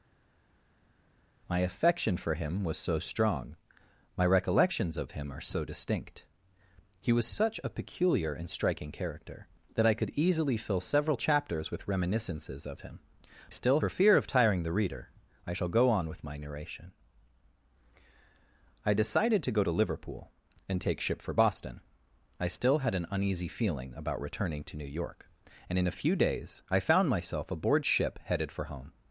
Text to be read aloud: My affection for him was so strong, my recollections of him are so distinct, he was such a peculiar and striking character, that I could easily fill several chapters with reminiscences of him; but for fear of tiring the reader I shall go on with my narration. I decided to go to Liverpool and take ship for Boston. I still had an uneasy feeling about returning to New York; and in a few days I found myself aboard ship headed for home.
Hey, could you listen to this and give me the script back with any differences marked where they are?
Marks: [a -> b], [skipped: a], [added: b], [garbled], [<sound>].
My affection for him was so strong, my recollections of him are so distinct, he was such a peculiar and striking character, that I could easily fill several chapters with reminiscences of him; [but -> still] for fear of tiring the reader I shall go on with my narration. I decided to go to Liverpool and take ship for Boston. I still had an uneasy feeling about returning to New York; and in a few days I found myself aboard ship headed for home.